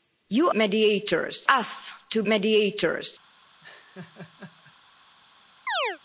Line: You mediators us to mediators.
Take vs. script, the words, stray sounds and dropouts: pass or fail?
fail